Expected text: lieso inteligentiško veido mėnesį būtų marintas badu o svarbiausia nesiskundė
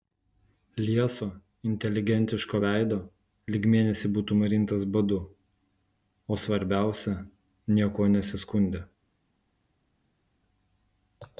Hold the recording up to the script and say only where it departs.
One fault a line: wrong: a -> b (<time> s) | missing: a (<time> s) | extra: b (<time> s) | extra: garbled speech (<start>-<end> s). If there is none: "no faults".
extra: lyg (3.6 s)
extra: niekuo (7.8 s)